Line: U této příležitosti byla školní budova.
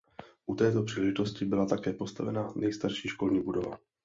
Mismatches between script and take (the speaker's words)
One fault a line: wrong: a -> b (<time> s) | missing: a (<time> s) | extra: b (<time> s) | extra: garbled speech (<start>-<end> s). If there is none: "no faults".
extra: také postavena nejstarší (1.6 s)